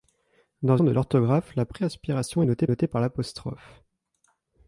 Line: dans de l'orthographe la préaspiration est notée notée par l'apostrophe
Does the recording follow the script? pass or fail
pass